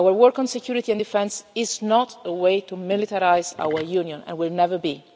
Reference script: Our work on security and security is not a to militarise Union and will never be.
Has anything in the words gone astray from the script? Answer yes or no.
yes